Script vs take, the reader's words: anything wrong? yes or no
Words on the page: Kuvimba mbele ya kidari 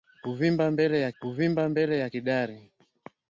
yes